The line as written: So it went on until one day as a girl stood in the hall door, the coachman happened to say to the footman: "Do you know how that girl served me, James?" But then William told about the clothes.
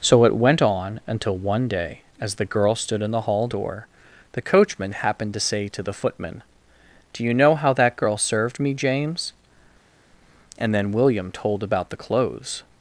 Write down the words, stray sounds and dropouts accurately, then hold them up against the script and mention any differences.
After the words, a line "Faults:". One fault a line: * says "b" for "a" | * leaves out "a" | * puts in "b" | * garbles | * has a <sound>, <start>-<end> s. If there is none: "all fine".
So it went on until one day as the girl stood in the hall door, the coachman happened to say to the footman: "Do you know how that girl served me, James?" And then William told about the clothes.
Faults:
* says "the" for "a"
* says "And" for "But"